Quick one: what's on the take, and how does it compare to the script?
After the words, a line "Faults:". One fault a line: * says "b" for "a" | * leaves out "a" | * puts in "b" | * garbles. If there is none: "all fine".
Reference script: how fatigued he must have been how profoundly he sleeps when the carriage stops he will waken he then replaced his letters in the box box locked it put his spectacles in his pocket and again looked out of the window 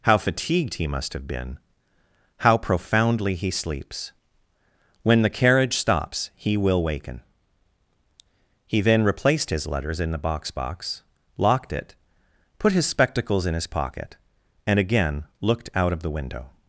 how fatigued he must have been how profoundly he sleeps when the carriage stops he will waken he then replaced his letters in the box box locked it put his spectacles in his pocket and again looked out of the window
Faults:
all fine